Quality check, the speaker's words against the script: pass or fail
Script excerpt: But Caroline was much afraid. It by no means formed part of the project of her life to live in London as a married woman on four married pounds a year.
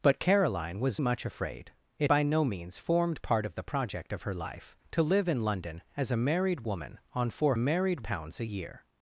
pass